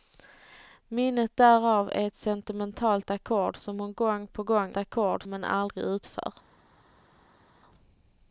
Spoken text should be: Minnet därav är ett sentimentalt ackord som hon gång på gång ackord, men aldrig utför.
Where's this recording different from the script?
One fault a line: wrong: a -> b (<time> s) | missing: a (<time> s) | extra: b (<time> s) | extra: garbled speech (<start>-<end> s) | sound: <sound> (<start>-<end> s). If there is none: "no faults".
no faults